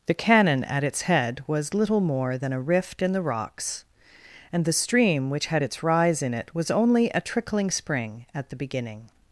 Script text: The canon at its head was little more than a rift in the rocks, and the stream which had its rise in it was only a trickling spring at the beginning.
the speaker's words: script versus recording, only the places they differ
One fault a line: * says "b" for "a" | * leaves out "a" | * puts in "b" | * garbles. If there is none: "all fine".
all fine